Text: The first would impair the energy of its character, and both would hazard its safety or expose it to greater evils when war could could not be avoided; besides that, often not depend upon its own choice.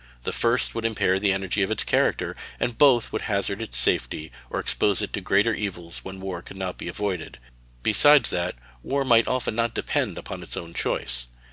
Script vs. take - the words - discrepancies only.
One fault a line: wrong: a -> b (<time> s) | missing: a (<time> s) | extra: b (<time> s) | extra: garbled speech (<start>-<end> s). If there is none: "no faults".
missing: could (6.6 s)
extra: war might (8.8 s)